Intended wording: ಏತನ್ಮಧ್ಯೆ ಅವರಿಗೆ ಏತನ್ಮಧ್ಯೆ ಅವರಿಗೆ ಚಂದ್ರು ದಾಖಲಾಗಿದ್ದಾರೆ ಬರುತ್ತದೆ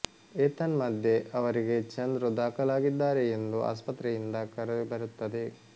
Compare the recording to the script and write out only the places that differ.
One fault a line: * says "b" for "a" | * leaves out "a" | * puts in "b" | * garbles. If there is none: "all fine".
* says "ಚಂದ್ರು ದಾಖಲಾಗಿದ್ದಾರೆ ಎಂದು ಆಸ್ಪತ್ರೆಯಿಂದ ಕರೆ" for "ಏತನ್ಮಧ್ಯೆ ಅವರಿಗೆ ಚಂದ್ರು ದಾಖಲಾಗಿದ್ದಾರೆ"